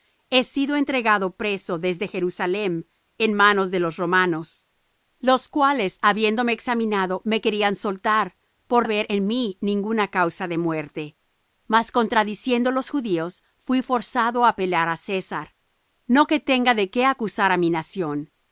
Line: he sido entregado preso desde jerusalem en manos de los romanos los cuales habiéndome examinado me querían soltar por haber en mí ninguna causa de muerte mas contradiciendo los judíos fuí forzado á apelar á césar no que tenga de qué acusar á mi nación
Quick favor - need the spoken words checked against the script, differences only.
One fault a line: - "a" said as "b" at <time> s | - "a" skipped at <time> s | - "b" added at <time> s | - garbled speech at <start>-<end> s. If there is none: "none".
none